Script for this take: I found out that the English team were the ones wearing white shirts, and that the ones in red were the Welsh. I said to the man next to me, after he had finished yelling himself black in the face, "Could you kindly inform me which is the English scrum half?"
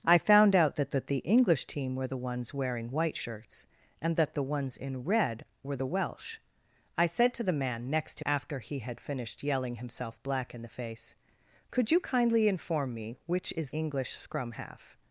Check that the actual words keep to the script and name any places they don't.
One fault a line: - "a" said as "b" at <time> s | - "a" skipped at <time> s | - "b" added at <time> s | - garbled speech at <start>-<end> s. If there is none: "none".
- "that" added at 0.9 s
- "me" skipped at 8.2 s
- "the" skipped at 13.7 s